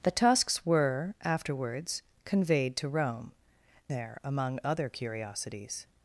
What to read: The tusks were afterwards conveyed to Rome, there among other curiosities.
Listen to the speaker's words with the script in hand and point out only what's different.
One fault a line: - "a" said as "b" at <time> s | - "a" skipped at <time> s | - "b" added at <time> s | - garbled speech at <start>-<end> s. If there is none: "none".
none